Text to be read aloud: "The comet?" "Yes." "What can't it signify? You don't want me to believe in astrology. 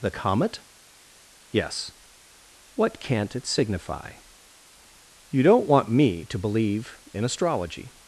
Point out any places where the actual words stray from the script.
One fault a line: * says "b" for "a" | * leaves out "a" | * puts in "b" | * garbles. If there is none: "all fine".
all fine